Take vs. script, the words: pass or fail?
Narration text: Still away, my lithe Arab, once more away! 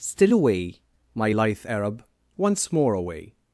pass